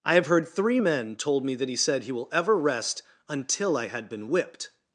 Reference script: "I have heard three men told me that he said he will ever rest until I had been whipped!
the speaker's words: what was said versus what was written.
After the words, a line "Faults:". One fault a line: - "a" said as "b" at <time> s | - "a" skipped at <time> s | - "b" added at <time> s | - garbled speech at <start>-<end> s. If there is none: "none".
"I have heard three men told me that he said he will ever rest until I had been whipped!
Faults:
none